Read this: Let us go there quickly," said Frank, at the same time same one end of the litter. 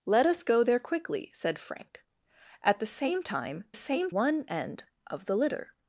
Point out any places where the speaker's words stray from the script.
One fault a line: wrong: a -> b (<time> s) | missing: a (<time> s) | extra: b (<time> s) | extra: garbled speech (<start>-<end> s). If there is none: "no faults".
no faults